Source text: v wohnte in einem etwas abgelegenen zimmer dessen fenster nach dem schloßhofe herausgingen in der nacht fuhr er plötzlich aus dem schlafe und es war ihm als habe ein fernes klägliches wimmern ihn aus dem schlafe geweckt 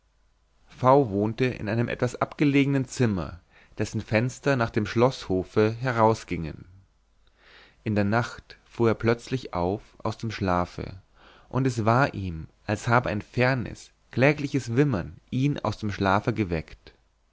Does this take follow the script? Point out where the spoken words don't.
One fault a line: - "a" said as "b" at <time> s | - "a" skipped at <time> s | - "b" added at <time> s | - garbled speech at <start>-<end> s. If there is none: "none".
- "auf" added at 9.5 s